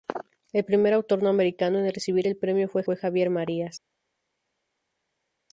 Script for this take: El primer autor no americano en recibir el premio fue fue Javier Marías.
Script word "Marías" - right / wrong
right